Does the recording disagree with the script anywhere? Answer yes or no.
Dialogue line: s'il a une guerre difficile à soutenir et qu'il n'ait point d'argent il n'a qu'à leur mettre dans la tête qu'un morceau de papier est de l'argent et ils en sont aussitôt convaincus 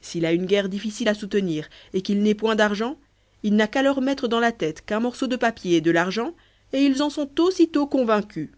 no